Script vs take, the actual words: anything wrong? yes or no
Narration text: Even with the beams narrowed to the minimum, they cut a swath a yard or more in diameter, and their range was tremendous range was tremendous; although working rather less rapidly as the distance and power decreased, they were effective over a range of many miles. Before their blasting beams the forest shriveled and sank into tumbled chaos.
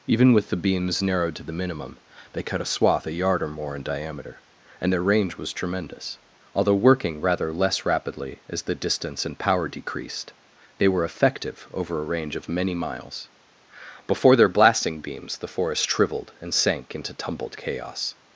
yes